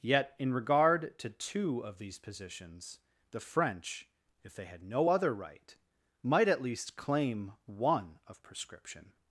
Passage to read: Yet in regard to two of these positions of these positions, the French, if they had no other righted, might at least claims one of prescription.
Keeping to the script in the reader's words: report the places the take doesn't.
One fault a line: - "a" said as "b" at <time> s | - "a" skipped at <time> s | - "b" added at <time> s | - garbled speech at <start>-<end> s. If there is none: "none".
- "of these positions" skipped at 3.0 s
- "righted" said as "right" at 5.3 s
- "claims" said as "claim" at 7.0 s